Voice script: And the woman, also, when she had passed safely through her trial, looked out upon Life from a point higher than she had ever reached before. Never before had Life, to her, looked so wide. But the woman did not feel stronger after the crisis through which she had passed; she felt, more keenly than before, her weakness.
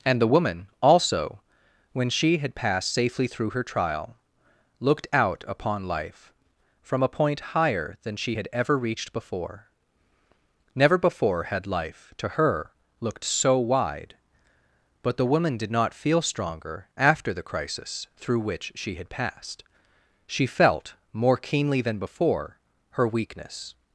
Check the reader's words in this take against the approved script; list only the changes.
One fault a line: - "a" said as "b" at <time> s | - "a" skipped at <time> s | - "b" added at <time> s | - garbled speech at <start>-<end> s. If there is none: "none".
none